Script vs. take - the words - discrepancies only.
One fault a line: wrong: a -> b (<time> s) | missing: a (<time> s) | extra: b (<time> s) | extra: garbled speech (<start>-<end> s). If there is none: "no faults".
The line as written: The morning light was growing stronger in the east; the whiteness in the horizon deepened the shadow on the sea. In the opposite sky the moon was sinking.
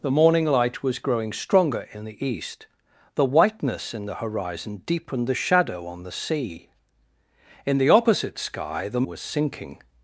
missing: moon (9.0 s)